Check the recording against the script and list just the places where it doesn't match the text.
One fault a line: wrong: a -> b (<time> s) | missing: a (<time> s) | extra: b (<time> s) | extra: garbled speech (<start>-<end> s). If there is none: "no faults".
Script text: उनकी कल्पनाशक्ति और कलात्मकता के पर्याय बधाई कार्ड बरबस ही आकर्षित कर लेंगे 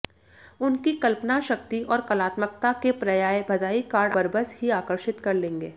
no faults